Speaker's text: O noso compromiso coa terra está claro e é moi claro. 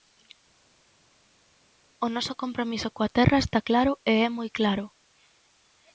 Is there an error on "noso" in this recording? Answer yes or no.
no